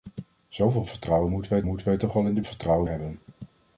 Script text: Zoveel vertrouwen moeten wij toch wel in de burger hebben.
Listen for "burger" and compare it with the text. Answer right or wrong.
wrong